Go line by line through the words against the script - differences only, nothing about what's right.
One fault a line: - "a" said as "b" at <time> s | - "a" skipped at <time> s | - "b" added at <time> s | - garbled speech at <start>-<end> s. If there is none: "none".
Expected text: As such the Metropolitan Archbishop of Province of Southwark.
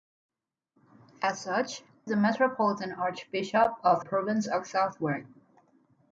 none